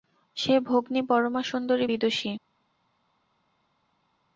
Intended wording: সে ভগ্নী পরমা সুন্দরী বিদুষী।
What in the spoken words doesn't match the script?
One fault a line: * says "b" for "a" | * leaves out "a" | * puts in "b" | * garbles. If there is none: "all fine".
all fine